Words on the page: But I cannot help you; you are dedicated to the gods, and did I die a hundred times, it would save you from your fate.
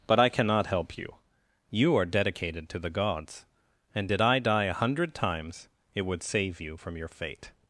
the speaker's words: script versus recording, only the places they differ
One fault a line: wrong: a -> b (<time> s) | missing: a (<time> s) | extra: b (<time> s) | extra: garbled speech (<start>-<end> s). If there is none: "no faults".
no faults